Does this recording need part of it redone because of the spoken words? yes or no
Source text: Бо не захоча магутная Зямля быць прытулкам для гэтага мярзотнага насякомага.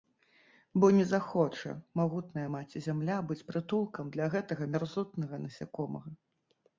yes